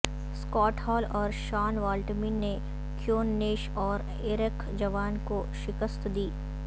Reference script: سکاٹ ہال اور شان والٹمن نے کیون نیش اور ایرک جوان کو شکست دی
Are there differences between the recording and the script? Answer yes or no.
no